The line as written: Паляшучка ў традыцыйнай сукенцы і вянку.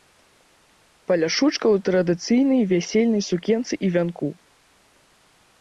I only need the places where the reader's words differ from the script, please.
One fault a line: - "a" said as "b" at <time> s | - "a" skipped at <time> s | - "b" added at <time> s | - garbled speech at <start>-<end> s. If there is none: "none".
- "вясельнай" added at 2.7 s